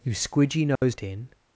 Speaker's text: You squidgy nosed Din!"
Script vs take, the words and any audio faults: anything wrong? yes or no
yes